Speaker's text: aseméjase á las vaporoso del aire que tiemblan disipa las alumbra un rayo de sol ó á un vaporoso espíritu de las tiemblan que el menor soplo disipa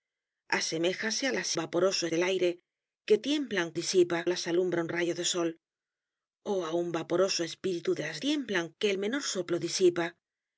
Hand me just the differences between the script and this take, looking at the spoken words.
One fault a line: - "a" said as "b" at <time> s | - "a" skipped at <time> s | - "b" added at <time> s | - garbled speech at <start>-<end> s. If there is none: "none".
none